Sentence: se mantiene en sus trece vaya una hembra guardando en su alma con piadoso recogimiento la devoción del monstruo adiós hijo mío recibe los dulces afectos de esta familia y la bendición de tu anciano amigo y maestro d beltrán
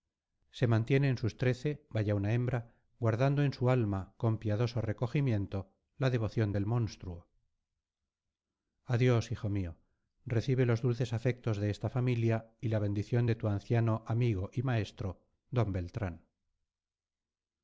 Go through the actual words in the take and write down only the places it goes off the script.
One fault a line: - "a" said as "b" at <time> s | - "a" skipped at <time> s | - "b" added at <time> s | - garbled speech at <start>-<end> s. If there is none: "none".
none